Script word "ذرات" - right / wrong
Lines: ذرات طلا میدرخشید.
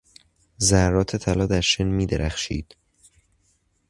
right